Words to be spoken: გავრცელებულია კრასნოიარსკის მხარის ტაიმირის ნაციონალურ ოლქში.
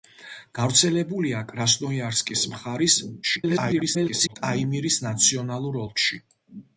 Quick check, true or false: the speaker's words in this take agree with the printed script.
false